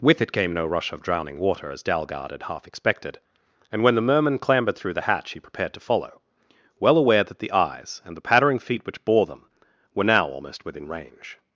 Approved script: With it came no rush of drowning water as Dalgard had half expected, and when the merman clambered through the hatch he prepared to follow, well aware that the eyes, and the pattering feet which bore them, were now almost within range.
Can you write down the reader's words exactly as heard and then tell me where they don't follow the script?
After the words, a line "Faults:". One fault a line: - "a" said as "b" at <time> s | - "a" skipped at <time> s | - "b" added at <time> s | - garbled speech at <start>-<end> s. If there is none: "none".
With it came no rush of drowning water as Dalgard had half expected, and when the merman clambered through the hatch he prepared to follow, well aware that the eyes, and the pattering feet which bore them, were now almost within range.
Faults:
none